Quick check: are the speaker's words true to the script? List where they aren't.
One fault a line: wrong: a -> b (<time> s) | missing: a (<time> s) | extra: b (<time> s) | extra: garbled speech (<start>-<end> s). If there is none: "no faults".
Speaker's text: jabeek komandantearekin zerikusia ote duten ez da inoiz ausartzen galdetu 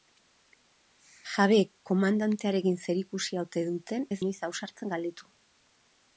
missing: da (4.2 s)